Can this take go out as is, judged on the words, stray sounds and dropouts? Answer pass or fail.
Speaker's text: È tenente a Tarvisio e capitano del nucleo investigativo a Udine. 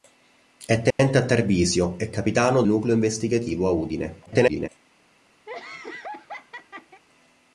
fail